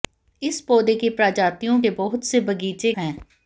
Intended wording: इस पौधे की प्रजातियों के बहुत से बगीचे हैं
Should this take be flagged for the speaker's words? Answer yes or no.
no